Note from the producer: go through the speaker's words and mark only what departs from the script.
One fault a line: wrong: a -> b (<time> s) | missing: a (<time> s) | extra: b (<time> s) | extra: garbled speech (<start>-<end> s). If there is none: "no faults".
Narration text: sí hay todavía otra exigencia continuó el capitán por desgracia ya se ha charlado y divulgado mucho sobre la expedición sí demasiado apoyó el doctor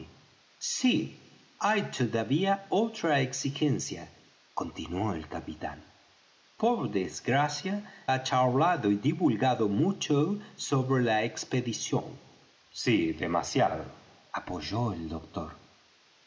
missing: ya se (7.9 s)